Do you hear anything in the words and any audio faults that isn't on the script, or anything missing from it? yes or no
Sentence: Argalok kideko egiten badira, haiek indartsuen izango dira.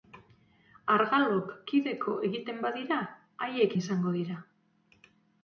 yes